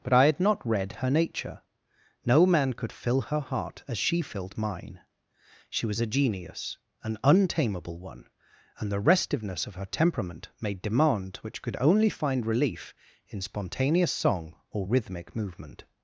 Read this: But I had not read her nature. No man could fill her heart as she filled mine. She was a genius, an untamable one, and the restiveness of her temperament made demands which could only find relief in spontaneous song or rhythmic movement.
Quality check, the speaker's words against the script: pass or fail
fail